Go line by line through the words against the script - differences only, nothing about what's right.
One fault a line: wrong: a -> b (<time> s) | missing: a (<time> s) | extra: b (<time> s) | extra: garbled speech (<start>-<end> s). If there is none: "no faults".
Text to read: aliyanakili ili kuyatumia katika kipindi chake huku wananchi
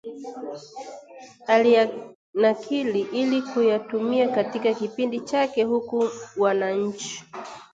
no faults